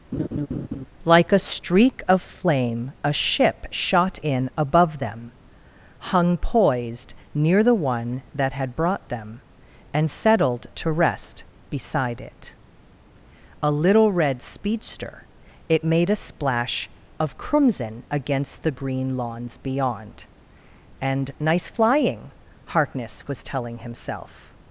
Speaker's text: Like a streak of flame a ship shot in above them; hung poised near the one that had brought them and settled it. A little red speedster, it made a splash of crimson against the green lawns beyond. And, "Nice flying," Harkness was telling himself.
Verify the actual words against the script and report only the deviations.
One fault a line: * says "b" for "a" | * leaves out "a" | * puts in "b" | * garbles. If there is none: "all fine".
* puts in "to rest beside"